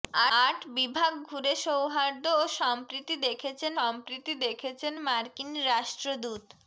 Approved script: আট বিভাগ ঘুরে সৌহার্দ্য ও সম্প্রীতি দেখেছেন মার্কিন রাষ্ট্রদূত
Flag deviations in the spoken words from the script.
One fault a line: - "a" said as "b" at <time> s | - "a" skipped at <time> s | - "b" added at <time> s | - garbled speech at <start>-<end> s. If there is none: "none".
- "সম্প্রীতি দেখেছেন" added at 3.7 s